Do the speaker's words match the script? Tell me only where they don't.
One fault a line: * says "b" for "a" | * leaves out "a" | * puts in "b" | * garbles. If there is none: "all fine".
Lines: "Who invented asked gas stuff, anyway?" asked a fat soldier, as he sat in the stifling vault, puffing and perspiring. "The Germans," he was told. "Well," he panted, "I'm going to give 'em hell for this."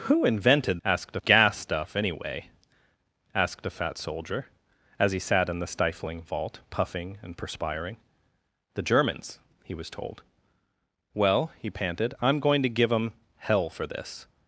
all fine